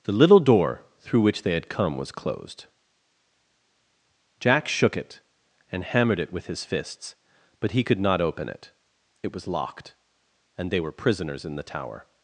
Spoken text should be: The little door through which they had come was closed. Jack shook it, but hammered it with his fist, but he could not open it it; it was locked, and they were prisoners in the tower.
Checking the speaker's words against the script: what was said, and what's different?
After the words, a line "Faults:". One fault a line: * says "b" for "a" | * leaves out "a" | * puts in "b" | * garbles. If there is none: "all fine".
The little door through which they had come was closed. Jack shook it, and hammered it with his fists, but he could not open it; it was locked, and they were prisoners in the tower.
Faults:
* says "and" for "but"
* says "fists" for "fist"
* leaves out "it"